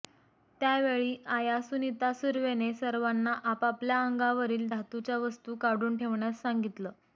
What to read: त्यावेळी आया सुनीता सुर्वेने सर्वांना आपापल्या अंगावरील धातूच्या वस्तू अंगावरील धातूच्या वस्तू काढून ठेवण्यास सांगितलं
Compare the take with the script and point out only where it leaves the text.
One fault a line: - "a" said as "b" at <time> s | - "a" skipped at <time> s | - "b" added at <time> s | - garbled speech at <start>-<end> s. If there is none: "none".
- "अंगावरील धातूच्या वस्तू" skipped at 5.6 s